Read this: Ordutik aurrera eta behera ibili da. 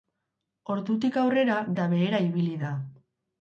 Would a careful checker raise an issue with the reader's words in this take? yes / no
no